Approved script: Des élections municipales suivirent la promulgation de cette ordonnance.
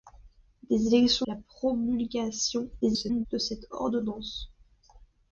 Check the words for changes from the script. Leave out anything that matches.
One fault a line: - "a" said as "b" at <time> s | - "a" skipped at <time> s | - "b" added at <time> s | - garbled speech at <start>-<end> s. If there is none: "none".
- "municipales suivirent" skipped at 1.3 s
- garbled speech at 2.8-3.3 s